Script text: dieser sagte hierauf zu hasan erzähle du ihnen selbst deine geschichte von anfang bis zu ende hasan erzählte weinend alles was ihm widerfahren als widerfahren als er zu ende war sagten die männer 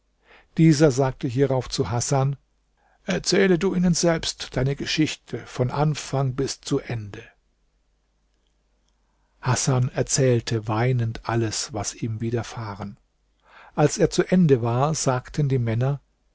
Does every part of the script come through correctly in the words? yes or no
no